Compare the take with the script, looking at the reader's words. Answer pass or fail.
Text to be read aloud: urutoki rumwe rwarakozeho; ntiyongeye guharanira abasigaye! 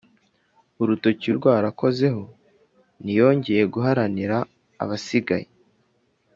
fail